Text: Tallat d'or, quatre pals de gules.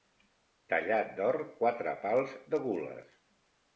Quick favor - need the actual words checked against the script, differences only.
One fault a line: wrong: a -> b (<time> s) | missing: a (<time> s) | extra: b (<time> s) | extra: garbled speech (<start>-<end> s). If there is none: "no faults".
no faults